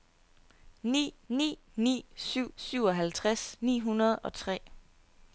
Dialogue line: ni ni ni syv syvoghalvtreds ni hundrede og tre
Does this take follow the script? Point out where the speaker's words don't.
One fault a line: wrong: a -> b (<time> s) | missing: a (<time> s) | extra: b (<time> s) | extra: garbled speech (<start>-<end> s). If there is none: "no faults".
no faults